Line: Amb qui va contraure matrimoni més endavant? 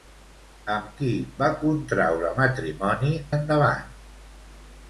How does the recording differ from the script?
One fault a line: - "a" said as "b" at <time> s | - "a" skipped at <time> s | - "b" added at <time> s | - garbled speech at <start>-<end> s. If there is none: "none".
- "més" skipped at 3.1 s